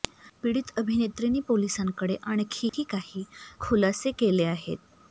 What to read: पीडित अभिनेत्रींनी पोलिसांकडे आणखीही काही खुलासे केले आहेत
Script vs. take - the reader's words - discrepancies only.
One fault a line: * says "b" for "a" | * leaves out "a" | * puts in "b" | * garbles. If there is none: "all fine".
all fine